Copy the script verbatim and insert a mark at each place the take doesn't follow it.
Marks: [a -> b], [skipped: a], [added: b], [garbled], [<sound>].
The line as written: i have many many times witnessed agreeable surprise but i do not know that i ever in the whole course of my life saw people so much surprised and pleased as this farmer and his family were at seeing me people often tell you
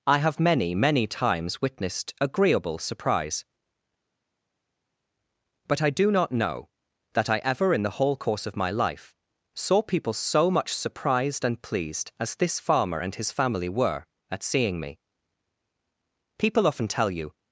i have many many times witnessed agreeable surprise but i do not know that i ever in the whole course of my life saw people so much surprised and pleased as this farmer and his family were at seeing me people often tell you